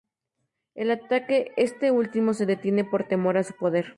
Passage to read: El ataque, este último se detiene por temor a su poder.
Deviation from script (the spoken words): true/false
false